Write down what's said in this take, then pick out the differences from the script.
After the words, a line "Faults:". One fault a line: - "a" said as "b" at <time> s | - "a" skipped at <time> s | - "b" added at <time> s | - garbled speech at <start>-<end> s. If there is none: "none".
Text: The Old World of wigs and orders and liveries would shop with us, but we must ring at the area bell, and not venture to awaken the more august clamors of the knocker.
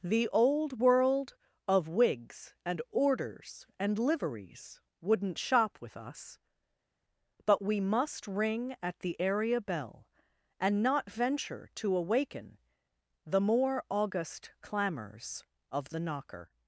The Old World of wigs and orders and liveries wouldn't shop with us, but we must ring at the area bell, and not venture to awaken the more august clamors of the knocker.
Faults:
- "would" said as "wouldn't" at 5.0 s